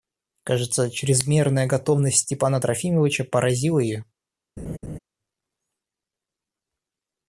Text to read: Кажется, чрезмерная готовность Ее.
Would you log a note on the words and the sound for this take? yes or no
yes